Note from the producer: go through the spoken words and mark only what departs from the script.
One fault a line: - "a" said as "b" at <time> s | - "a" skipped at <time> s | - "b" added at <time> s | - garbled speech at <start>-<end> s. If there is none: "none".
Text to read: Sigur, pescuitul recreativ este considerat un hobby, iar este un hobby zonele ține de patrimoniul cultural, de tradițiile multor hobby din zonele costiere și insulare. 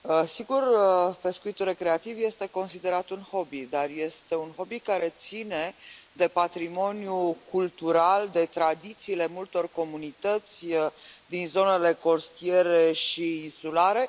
- "iar" said as "dar" at 3.6 s
- "zonele" said as "care" at 4.8 s
- "hobby" said as "comunități" at 9.7 s